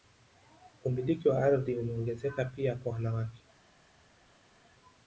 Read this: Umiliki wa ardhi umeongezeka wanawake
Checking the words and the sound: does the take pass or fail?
fail